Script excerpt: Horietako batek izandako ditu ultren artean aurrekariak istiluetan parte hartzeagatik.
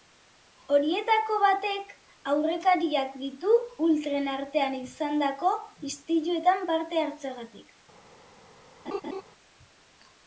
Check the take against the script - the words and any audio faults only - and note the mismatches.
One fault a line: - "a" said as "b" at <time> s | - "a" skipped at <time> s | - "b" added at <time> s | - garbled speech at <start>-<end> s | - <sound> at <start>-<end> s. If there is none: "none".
- "izandako" said as "aurrekariak" at 2.3 s
- "aurrekariak" said as "izandako" at 4.8 s
- laugh at 8.9-9.2 s